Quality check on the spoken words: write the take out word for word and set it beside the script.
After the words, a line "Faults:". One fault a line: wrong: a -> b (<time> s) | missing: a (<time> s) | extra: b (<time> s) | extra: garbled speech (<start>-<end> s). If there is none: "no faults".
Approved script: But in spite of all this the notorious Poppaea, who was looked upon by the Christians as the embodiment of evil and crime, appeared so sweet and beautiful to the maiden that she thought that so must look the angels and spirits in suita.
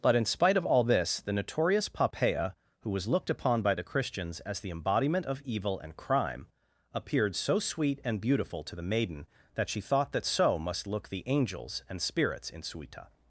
But in spite of all this the notorious Poppaea, who was looked upon by the Christians as the embodiment of evil and crime, appeared so sweet and beautiful to the maiden that she thought that so must look the angels and spirits in suita.
Faults:
no faults